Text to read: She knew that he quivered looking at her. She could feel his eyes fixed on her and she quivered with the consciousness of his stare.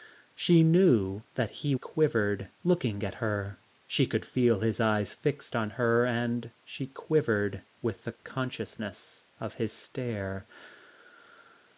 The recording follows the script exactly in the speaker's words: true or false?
true